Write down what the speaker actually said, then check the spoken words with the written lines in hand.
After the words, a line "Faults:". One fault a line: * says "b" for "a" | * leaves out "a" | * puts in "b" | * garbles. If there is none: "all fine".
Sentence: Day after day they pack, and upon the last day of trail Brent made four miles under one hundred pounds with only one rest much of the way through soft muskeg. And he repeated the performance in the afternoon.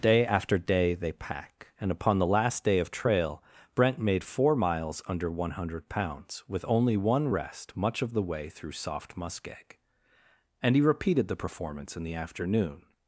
Day after day they pack, and upon the last day of trail Brent made four miles under one hundred pounds with only one rest much of the way through soft muskeg. And he repeated the performance in the afternoon.
Faults:
all fine